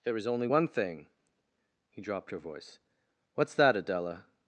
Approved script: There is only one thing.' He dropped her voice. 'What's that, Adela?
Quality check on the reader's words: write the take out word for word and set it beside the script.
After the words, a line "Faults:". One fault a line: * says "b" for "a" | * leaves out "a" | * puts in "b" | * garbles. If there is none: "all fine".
There is only one thing.' He dropped her voice. 'What's that, Adela?
Faults:
all fine